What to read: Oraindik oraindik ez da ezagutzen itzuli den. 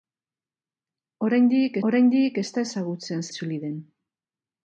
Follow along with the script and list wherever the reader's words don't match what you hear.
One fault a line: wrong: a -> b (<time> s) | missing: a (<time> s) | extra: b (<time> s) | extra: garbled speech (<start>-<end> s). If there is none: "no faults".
no faults